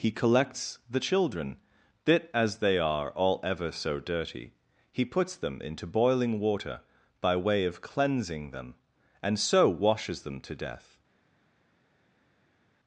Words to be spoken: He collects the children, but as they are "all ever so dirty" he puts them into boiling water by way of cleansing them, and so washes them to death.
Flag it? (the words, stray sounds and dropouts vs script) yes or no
yes